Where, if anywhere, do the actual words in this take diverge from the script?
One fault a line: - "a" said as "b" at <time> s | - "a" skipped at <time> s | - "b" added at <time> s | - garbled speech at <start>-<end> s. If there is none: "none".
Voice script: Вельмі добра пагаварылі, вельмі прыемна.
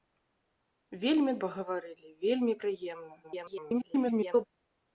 - "добра" skipped at 1.4 s
- garbled speech at 3.2-4.5 s